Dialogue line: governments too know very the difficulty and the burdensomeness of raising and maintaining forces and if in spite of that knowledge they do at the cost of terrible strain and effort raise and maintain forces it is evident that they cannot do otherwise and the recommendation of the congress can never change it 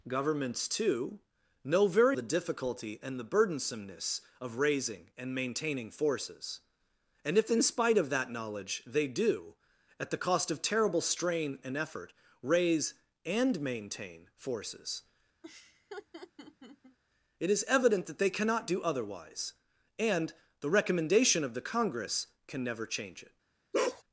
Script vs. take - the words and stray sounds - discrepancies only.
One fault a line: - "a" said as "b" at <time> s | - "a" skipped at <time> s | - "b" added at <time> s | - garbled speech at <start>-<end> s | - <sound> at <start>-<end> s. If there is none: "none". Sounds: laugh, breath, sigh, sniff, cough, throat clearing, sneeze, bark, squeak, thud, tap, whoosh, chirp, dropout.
- laugh at 15.4-17.0 s
- bark at 23.7-24.0 s